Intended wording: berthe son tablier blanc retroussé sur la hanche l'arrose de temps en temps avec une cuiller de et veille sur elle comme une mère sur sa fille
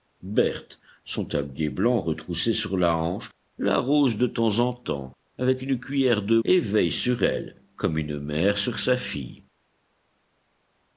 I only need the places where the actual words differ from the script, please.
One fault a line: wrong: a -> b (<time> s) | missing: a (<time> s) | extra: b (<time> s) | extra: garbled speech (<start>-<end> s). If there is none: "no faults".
no faults